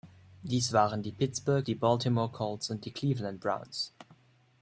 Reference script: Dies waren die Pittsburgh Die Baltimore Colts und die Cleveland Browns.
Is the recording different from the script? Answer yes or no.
no